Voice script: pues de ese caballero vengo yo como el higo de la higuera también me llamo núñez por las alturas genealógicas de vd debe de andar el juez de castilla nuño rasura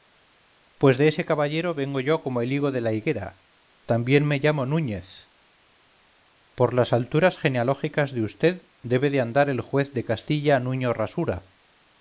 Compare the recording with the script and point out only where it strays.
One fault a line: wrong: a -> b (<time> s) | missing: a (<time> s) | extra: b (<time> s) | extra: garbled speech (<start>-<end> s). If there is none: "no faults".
no faults